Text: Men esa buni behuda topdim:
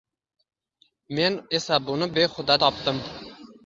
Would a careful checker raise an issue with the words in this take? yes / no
no